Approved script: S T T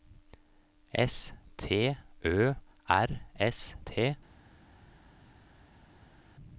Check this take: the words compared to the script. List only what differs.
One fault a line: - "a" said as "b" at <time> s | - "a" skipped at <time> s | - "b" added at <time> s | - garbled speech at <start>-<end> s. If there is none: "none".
- "Ø R S" added at 2.2 s